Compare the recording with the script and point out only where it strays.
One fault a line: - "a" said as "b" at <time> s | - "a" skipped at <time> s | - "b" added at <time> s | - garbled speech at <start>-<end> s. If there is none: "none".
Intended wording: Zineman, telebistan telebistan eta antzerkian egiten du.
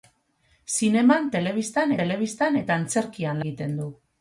none